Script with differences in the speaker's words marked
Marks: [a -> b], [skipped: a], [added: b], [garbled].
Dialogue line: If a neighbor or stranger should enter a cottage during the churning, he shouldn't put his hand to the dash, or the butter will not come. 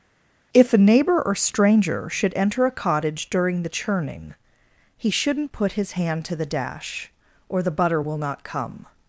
If a neighbor or stranger should enter a cottage during the churning, he shouldn't put his hand to the dash, or the butter will not come.